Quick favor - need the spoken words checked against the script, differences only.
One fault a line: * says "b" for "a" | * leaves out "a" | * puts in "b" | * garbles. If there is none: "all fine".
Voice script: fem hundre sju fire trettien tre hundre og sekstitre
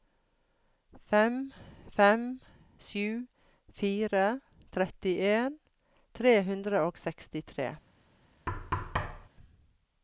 * says "fem" for "hundre"